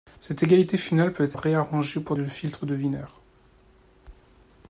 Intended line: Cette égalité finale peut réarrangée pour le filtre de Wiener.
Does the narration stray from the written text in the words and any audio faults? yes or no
no